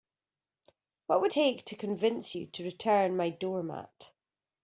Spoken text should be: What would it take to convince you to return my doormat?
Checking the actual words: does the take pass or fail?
fail